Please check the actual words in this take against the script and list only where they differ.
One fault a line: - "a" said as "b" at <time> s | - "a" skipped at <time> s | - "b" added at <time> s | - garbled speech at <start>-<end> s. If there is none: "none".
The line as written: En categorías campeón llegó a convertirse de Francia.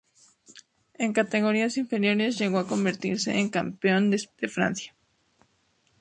- "campeón" said as "inferiores" at 1.8 s
- "en campeón" added at 3.4 s